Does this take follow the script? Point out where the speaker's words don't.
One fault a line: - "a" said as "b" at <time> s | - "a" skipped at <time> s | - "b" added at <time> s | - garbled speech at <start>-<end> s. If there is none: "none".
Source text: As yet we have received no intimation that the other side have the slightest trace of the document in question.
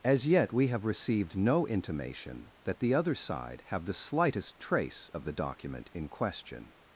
none